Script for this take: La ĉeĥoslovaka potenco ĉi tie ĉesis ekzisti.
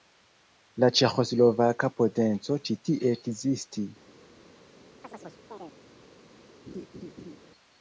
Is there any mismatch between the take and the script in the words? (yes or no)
yes